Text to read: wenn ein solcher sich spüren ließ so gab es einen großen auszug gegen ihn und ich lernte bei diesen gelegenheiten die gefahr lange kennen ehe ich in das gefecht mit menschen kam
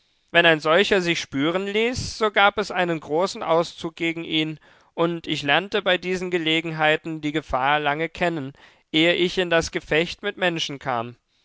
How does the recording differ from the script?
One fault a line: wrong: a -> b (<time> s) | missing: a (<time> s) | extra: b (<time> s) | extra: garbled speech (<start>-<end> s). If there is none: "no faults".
no faults